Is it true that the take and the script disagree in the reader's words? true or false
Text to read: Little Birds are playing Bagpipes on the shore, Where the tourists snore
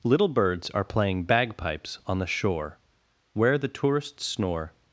false